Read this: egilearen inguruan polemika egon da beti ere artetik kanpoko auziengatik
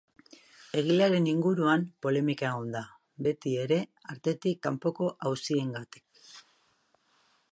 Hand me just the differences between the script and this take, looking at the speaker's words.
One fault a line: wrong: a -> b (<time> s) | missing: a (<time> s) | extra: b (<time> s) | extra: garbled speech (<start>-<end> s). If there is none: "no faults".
no faults